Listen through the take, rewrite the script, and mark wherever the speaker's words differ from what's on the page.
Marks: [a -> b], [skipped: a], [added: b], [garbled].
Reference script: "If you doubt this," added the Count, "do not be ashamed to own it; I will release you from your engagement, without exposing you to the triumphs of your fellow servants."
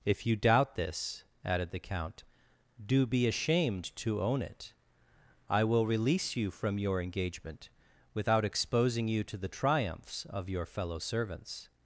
"If you doubt this," added the Count, "do [skipped: not] be ashamed to own it; I will release you from your engagement, without exposing you to the triumphs of your fellow servants."